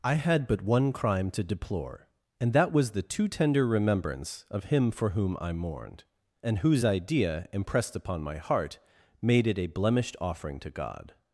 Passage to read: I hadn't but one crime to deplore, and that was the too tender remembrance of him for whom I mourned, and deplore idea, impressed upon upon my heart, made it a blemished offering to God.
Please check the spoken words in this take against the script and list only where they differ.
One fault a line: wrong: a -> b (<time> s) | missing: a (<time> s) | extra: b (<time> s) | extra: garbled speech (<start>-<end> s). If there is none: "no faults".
wrong: hadn't -> had (0.1 s)
wrong: deplore -> whose (6.6 s)
missing: upon (8.2 s)